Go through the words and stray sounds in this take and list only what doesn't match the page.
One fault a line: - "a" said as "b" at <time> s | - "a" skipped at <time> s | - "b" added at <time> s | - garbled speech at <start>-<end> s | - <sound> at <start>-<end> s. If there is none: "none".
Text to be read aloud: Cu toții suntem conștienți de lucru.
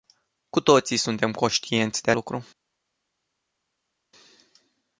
none